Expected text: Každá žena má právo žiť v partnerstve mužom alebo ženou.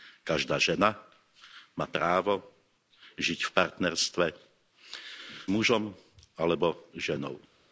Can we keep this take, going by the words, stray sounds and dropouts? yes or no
yes